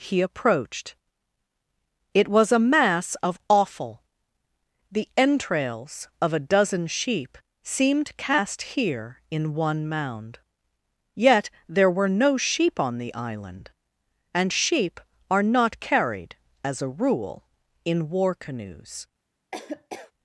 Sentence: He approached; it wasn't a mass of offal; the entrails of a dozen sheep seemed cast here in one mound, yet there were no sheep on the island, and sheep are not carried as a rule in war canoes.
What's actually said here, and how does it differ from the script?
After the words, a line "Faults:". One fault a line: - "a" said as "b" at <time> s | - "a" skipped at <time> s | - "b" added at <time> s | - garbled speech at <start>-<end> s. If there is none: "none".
He approached; it was a mass of offal; the entrails of a dozen sheep seemed cast here in one mound, yet there were no sheep on the island, and sheep are not carried as a rule in war canoes.
Faults:
- "wasn't" said as "was" at 2.3 s